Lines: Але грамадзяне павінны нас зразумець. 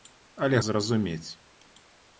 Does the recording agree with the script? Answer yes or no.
no